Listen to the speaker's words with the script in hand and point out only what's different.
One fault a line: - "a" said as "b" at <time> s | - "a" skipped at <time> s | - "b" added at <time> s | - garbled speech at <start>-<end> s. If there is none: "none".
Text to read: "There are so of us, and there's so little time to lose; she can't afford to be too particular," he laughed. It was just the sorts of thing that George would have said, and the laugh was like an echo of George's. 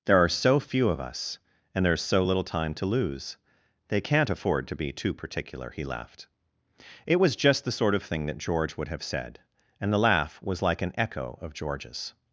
- "few" added at 0.6 s
- "she" said as "they" at 3.9 s
- "sorts" said as "sort" at 7.7 s